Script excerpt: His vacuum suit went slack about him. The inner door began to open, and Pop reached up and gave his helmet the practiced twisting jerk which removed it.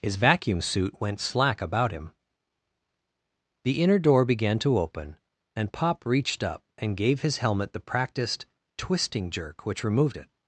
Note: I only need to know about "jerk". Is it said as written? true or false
true